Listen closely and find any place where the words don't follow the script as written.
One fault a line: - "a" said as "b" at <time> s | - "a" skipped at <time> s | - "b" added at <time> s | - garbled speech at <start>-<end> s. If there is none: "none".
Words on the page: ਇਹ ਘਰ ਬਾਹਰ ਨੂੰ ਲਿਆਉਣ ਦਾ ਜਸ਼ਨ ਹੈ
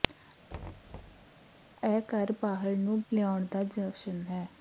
none